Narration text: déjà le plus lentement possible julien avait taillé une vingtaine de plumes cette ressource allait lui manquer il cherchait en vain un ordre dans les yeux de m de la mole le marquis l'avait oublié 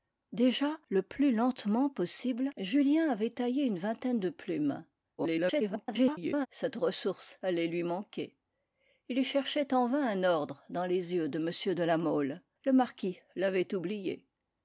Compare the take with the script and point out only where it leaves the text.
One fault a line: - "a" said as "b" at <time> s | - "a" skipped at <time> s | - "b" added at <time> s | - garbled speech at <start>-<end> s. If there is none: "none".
- garbled speech at 5.2-6.5 s